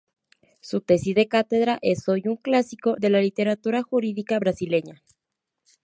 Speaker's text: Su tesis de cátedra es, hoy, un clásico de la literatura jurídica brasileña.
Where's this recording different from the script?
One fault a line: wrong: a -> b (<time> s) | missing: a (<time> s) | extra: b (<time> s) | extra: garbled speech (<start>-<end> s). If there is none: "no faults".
no faults